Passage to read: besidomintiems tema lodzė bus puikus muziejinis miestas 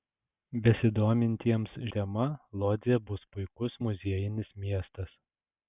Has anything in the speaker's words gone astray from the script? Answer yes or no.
no